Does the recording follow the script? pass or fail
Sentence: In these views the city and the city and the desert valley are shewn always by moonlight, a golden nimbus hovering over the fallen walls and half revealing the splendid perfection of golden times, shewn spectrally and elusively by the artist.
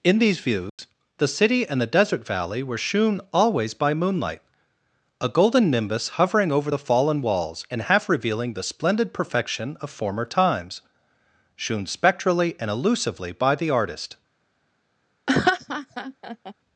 fail